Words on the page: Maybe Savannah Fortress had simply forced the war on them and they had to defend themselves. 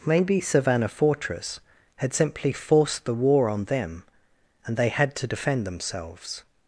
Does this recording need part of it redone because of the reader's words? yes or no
no